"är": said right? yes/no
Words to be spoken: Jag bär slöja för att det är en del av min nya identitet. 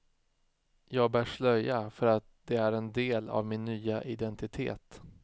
yes